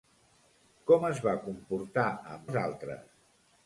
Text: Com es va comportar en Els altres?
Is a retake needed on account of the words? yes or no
no